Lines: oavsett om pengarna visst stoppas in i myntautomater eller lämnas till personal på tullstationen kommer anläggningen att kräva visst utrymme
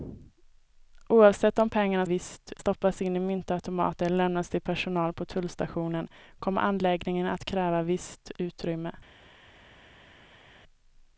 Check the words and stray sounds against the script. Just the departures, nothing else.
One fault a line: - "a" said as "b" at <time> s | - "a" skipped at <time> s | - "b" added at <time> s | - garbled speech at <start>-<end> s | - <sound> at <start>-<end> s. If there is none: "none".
none